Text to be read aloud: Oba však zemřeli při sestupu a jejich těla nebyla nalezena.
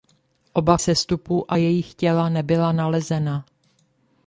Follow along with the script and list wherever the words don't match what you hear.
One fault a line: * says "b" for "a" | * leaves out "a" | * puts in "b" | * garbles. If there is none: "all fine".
* leaves out "však zemřeli při"